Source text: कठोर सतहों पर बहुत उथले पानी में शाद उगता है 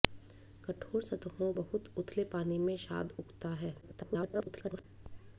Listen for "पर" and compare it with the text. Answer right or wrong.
wrong